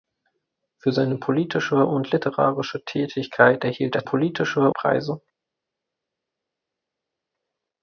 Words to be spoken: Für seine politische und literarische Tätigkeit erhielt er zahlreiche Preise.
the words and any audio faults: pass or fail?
fail